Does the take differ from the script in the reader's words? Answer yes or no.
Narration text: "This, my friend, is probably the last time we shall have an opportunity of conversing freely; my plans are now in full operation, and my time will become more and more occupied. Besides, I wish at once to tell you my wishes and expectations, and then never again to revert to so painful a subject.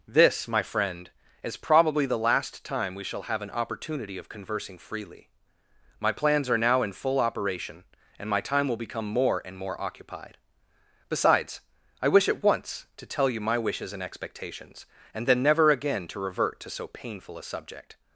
no